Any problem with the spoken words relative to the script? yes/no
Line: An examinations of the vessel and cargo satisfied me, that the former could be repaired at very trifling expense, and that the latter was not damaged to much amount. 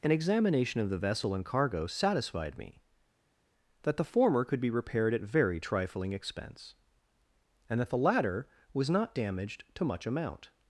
yes